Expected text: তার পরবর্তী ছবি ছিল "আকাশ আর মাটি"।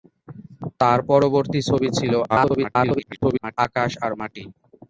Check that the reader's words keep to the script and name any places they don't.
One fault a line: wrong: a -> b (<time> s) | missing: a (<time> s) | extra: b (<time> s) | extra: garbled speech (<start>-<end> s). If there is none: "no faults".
extra: garbled speech (2.3-3.6 s)